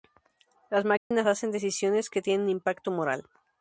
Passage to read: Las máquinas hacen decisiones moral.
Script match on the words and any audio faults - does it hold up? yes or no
no